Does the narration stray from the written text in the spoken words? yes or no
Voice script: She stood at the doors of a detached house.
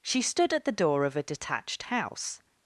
yes